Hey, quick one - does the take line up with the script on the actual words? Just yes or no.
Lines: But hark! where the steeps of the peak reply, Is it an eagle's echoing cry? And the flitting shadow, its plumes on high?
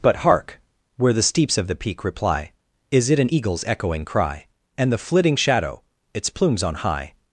yes